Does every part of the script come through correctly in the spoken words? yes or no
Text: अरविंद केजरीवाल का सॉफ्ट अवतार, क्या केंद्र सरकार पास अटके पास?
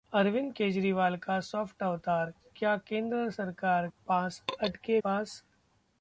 yes